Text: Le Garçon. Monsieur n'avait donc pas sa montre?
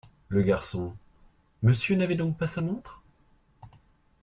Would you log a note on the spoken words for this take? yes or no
no